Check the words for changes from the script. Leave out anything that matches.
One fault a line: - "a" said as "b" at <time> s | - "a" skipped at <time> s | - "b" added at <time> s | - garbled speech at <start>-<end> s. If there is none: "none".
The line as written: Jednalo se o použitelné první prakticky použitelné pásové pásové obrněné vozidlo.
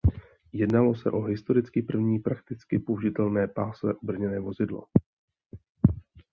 - "použitelné" said as "historicky" at 1.2 s
- "pásové" skipped at 3.9 s